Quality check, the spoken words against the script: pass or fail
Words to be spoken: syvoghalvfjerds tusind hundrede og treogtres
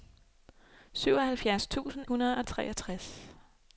pass